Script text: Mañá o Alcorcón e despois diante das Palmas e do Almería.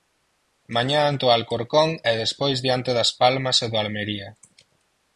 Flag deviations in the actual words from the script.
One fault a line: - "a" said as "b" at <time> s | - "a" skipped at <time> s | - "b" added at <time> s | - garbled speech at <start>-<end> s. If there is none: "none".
- "ante" added at 1.1 s